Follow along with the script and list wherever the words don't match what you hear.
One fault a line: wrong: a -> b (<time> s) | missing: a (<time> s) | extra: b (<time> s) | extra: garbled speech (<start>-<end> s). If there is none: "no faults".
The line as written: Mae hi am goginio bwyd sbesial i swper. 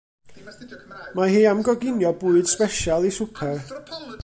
no faults